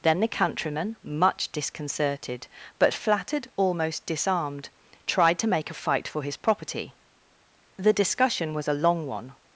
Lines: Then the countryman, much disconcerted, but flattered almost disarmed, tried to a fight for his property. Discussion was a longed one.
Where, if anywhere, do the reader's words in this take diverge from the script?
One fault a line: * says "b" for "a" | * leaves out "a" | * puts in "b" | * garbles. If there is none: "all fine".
* puts in "make"
* puts in "The"
* says "long" for "longed"